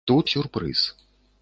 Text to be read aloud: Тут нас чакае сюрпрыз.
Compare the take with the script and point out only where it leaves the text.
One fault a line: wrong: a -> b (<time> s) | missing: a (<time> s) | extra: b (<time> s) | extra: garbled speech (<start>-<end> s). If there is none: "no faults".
missing: нас чакае (0.3 s)